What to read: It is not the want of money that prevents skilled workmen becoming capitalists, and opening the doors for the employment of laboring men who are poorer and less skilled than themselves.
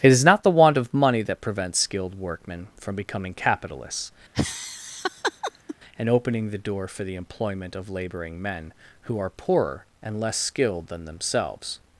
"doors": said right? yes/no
no